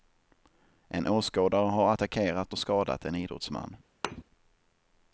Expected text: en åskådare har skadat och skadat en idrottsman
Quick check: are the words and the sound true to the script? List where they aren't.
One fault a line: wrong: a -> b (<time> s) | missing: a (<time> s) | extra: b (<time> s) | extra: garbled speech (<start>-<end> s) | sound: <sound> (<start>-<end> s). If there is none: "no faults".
wrong: skadat -> attackerat (1.9 s)
sound: thud (4.0-4.2 s)